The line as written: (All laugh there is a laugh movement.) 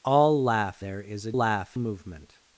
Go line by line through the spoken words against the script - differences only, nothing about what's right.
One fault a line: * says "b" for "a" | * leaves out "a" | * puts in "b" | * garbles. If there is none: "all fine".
all fine